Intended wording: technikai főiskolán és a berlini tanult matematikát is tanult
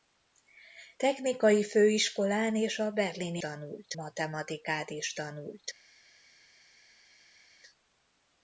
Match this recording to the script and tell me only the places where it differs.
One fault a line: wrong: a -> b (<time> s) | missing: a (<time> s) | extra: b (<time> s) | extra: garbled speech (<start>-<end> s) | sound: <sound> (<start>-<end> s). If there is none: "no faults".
no faults